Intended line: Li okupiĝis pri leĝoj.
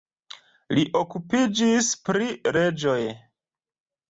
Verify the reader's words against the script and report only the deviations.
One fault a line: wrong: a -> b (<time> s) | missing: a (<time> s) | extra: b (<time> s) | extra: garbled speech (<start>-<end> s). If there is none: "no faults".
no faults